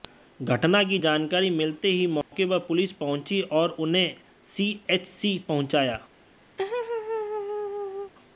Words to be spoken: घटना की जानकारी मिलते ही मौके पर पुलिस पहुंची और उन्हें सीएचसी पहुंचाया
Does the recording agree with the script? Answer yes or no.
yes